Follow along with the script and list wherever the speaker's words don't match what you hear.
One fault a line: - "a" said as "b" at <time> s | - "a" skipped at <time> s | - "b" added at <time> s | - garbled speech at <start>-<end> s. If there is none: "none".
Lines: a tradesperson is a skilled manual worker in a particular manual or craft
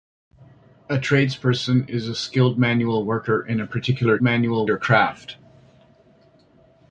none